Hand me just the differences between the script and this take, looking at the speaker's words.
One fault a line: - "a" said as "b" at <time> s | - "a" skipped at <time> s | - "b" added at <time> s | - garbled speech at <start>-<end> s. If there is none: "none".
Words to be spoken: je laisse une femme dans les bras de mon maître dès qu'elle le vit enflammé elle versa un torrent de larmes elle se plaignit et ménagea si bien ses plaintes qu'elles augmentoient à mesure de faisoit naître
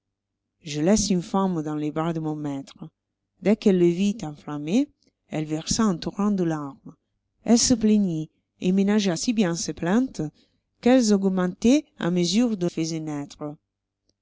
none